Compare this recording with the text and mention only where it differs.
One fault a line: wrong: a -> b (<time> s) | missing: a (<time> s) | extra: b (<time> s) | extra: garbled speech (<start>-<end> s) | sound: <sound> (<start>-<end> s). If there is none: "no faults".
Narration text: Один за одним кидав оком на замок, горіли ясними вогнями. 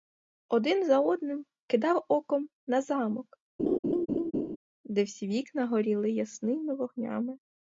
sound: laugh (3.6-4.6 s)
extra: де всі вікна (4.8 s)